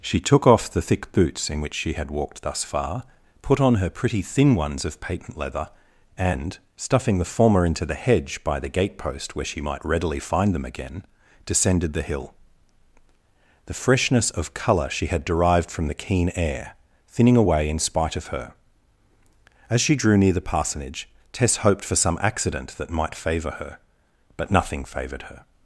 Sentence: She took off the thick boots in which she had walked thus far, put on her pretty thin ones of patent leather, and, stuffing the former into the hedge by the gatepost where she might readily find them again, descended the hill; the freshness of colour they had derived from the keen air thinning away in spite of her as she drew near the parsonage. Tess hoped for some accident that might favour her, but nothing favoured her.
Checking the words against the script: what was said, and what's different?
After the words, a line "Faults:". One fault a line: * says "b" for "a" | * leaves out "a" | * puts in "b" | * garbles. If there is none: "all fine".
She took off the thick boots in which she had walked thus far, put on her pretty thin ones of patent leather, and, stuffing the former into the hedge by the gatepost where she might readily find them again, descended the hill; the freshness of colour she had derived from the keen air thinning away in spite of her as she drew near the parsonage. Tess hoped for some accident that might favour her, but nothing favoured her.
Faults:
* says "she" for "they"